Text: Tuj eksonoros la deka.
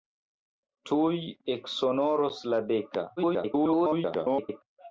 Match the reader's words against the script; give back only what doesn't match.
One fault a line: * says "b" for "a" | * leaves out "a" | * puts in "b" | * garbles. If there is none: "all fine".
* garbles